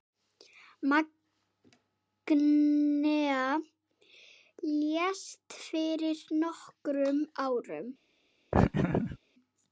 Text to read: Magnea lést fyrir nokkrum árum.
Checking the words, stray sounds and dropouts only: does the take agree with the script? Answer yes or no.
no